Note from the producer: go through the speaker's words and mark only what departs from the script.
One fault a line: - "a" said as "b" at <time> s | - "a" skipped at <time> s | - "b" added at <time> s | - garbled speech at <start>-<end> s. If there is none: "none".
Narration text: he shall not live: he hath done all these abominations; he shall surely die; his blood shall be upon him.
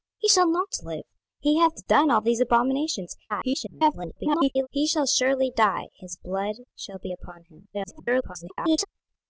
- garbled speech at 3.3-4.7 s
- garbled speech at 7.7-8.9 s